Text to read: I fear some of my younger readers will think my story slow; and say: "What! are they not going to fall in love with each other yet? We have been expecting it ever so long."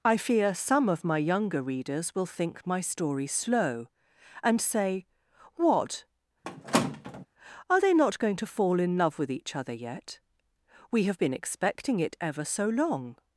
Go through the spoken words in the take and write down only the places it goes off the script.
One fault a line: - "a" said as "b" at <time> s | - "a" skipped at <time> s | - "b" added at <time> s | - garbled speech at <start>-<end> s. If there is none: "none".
none